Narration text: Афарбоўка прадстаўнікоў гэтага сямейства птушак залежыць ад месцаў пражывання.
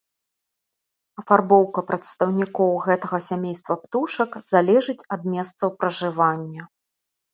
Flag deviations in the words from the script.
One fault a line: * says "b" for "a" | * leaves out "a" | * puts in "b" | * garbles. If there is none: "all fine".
all fine